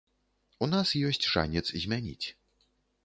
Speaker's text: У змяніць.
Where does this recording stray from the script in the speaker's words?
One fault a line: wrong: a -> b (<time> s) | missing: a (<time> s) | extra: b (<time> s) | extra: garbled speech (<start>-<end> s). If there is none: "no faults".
extra: нас ёсць шанец (0.7 s)